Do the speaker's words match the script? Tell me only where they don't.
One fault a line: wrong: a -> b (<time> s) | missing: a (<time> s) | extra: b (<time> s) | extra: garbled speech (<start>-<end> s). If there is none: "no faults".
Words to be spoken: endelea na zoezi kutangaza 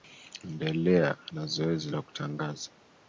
extra: la (1.9 s)